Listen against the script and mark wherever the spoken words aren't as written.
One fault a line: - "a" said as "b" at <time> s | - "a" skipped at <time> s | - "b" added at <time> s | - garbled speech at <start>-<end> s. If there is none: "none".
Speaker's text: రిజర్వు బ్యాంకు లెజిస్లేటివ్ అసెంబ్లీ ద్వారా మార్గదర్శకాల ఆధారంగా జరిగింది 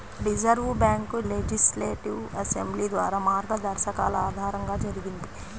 none